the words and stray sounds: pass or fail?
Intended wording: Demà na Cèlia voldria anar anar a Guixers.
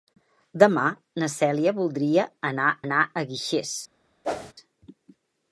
fail